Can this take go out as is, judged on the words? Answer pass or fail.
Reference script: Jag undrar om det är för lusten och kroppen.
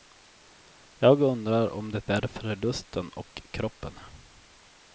pass